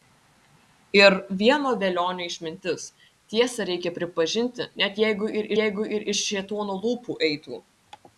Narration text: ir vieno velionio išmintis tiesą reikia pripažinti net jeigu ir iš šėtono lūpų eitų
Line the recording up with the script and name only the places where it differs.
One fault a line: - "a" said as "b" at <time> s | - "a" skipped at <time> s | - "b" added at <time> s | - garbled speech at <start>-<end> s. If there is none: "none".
- "jeigu ir" added at 5.6 s